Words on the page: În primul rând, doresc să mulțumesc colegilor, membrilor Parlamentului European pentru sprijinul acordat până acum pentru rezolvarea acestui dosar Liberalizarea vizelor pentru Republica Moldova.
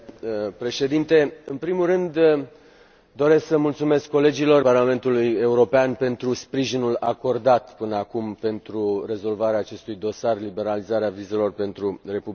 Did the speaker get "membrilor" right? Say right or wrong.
wrong